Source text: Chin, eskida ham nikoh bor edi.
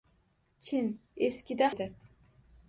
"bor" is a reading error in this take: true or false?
true